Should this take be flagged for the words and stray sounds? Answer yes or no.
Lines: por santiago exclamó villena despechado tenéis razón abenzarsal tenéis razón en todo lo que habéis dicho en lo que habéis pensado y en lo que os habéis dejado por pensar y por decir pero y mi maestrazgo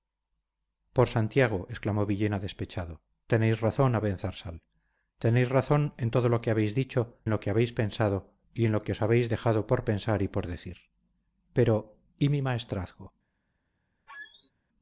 yes